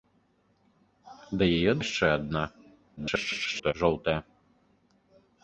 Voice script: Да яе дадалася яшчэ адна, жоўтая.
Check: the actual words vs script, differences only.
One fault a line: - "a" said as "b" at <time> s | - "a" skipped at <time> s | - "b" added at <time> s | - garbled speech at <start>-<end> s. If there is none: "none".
- "дадалася" skipped at 1.7 s
- garbled speech at 3.0-3.7 s